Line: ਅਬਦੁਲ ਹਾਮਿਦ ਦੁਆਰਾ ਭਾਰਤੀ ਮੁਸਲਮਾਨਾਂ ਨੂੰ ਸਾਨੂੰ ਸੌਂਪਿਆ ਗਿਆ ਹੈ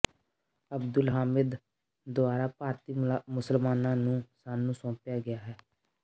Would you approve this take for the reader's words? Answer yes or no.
yes